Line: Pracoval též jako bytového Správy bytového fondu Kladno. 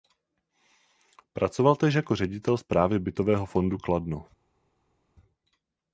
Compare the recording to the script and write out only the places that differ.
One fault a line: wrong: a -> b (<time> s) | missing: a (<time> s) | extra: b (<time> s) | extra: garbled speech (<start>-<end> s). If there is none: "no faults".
wrong: bytového -> ředitel (2.1 s)